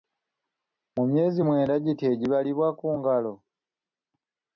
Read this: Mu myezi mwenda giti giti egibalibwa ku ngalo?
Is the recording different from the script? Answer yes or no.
yes